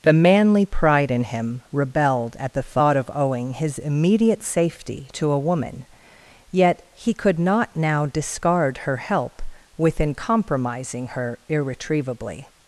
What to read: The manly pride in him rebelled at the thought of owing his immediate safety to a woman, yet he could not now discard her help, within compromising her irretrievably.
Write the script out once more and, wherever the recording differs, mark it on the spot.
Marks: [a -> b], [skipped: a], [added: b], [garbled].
The manly pride in him rebelled at the thought of owing his immediate safety to a woman, yet he could not now discard her help, within compromising her irretrievably.